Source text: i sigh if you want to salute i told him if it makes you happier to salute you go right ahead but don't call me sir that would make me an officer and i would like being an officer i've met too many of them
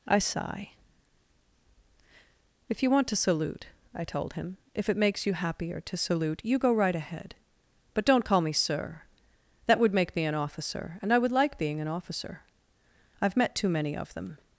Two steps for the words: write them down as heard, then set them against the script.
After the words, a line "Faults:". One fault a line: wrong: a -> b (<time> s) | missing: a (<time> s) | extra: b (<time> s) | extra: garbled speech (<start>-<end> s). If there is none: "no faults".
i sigh if you want to salute i told him if it makes you happier to salute you go right ahead but don't call me sir that would make me an officer and i would like being an officer i've met too many of them
Faults:
no faults